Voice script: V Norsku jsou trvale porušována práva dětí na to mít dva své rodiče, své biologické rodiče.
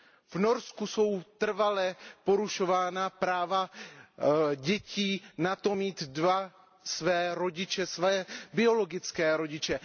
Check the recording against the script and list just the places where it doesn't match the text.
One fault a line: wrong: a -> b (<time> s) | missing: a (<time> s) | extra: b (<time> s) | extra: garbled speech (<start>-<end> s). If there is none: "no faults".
no faults